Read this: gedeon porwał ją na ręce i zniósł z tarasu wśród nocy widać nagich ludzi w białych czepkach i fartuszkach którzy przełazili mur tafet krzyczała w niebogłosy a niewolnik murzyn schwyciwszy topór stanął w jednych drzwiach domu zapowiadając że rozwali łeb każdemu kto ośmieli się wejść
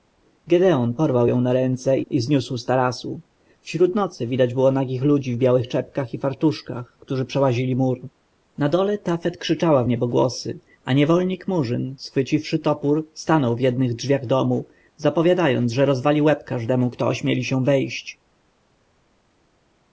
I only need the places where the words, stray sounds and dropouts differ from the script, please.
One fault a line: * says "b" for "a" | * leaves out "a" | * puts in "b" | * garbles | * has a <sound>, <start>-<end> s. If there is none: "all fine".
* puts in "było"
* puts in "na dole"